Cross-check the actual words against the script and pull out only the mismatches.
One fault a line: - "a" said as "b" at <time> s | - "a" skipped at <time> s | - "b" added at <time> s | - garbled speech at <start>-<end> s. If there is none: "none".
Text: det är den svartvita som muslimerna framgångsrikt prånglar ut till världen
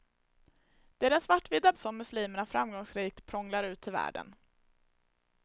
none